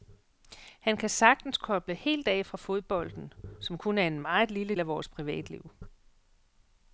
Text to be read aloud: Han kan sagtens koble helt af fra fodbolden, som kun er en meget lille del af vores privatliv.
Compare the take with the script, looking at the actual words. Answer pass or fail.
fail